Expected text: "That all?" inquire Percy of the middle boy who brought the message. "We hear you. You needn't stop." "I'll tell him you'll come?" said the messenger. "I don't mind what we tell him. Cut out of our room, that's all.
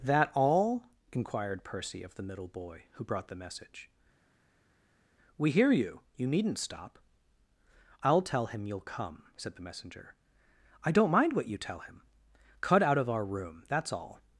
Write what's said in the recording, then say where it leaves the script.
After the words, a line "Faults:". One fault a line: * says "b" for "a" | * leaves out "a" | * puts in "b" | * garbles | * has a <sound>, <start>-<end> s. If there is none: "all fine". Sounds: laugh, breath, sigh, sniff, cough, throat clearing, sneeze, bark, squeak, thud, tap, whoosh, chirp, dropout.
"That all?" inquired Percy of the middle boy who brought the message. "We hear you. You needn't stop." "I'll tell him you'll come?" said the messenger. "I don't mind what you tell him. Cut out of our room, that's all.
Faults:
* says "inquired" for "inquire"
* says "you" for "we"